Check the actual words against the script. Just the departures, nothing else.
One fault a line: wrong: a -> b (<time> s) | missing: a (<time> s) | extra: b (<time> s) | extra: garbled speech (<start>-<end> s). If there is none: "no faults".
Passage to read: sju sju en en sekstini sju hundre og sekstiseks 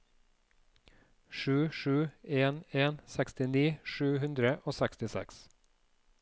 no faults